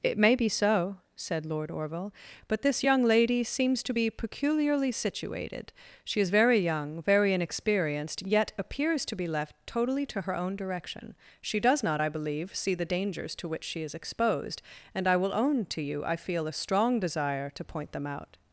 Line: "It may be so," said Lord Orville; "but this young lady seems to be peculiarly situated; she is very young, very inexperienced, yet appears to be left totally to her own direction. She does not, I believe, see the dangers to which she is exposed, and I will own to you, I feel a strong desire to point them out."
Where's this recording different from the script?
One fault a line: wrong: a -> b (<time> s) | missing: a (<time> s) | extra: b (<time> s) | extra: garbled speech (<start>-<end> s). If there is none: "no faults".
no faults